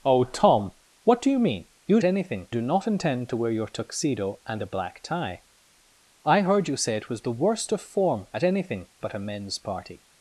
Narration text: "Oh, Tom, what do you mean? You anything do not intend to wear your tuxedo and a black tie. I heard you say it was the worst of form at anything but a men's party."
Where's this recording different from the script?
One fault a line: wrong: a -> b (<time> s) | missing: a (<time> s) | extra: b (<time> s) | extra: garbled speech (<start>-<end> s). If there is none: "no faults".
no faults